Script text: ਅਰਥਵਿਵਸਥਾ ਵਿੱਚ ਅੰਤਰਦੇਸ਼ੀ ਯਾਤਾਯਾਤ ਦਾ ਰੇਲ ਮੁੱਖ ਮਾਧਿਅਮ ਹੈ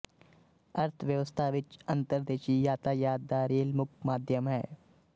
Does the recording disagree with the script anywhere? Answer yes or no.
no